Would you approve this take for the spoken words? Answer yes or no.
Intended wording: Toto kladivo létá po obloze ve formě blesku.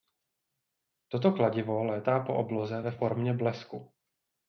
yes